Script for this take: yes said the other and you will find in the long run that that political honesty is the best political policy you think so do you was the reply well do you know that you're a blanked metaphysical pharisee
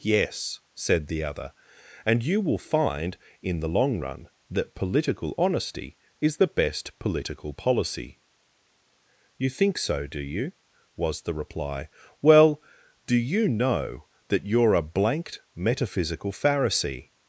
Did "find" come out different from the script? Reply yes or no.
no